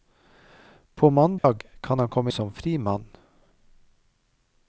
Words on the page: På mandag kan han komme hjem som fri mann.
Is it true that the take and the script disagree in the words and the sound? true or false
true